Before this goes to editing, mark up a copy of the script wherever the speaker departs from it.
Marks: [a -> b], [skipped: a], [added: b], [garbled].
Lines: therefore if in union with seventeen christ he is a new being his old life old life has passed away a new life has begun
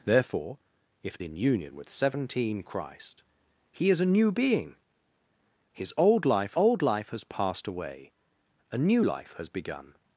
therefore if in union with seventeen christ he is a new being his old life old life has passed away a new life has begun